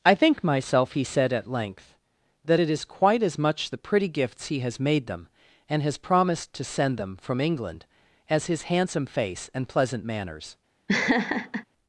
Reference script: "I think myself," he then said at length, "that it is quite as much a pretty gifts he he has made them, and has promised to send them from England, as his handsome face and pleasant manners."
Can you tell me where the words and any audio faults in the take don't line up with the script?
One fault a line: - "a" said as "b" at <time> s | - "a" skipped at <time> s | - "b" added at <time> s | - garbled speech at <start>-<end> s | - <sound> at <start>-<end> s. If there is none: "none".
- "then" skipped at 1.0 s
- "a" said as "the" at 3.7 s
- "he" skipped at 4.6 s
- laugh at 10.9-11.6 s